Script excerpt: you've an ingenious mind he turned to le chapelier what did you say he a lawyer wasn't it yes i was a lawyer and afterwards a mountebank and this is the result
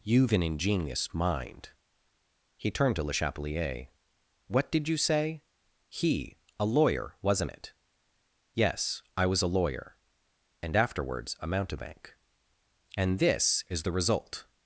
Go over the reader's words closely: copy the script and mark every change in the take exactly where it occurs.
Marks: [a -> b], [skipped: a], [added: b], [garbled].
you've an ingenious mind he turned to le chapelier what did you say he a lawyer wasn't it yes i was a lawyer and afterwards a mountebank and this is the result